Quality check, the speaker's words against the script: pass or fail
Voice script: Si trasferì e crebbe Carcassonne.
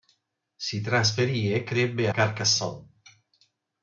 pass